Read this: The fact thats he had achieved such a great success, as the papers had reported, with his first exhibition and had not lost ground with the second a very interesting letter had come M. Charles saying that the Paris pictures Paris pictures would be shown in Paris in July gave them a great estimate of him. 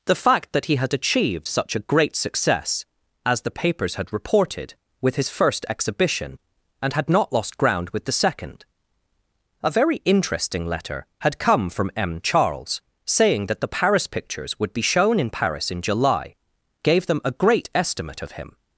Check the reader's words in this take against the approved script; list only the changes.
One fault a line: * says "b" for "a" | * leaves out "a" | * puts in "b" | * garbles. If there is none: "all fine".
* says "that" for "thats"
* puts in "from"
* leaves out "Paris pictures"